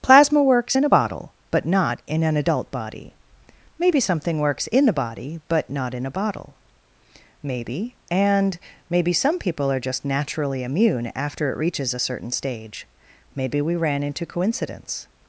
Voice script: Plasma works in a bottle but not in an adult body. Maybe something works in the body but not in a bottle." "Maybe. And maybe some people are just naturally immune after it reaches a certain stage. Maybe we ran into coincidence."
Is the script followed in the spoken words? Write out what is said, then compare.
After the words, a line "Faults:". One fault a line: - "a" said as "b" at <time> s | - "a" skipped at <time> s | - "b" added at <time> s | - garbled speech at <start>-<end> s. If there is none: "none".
Plasma works in a bottle but not in an adult body. Maybe something works in the body but not in a bottle." "Maybe. And maybe some people are just naturally immune after it reaches a certain stage. Maybe we ran into coincidence."
Faults:
none